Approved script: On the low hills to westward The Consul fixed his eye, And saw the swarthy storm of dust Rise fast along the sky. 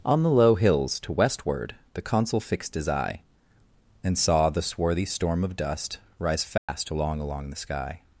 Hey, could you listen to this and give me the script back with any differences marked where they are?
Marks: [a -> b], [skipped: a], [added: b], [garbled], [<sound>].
On the low hills to westward The Consul fixed his eye, And saw the swarthy storm of dust Rise fast [dropout] along [added: along] the sky.